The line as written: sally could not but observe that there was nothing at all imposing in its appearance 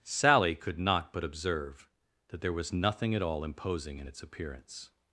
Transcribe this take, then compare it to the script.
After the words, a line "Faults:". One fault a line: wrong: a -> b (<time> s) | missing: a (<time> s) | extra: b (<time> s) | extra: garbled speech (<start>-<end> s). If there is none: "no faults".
sally could not but observe that there was nothing at all imposing in its appearance
Faults:
no faults